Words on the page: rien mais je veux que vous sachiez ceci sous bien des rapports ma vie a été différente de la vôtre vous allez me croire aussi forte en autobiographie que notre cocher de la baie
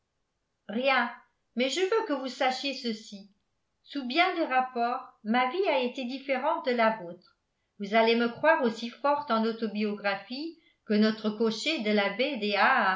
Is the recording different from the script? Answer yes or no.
no